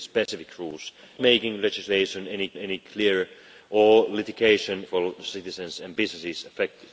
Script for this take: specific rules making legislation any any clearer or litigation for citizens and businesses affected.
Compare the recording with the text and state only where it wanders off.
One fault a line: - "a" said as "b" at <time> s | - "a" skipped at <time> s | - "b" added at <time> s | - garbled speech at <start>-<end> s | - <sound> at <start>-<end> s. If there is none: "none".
- dropout at 0.3-0.3 s